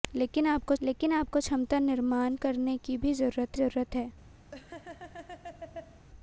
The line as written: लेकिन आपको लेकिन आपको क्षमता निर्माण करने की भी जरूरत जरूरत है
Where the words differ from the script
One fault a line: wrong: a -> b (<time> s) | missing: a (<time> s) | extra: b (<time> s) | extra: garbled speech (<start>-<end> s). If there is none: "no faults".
no faults